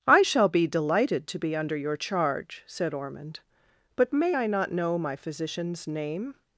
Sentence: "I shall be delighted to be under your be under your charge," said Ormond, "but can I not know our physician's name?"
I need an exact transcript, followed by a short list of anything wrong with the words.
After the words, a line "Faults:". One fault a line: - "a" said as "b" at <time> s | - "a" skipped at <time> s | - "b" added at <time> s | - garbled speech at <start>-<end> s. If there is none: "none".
"I shall be delighted to be under your charge," said Ormond, "but may I not know my physician's name?"
Faults:
- "be under your" skipped at 1.9 s
- "can" said as "may" at 4.1 s
- "our" said as "my" at 5.0 s